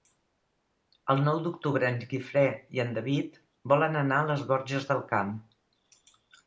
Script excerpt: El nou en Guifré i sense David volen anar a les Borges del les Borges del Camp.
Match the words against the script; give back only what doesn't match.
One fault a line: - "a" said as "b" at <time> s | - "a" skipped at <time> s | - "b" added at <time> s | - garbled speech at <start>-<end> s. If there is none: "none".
- "d'octubre" added at 1.5 s
- "sense" said as "en" at 2.9 s
- "les Borges del" skipped at 5.1 s